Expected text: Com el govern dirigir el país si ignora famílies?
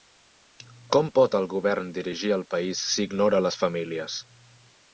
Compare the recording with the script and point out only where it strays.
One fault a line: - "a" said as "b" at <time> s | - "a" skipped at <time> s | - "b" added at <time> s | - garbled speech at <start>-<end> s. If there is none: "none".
- "pot" added at 1.2 s
- "les" added at 3.5 s